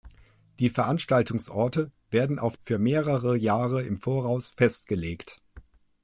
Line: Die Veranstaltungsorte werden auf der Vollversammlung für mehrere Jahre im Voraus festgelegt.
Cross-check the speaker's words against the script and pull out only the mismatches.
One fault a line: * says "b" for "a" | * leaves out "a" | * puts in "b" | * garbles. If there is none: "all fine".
* leaves out "der Vollversammlung"